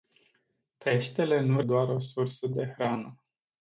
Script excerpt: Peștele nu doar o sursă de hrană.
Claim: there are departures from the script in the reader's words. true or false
false